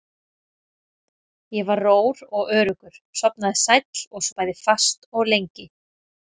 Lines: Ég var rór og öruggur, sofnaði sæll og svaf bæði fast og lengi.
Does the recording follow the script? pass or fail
fail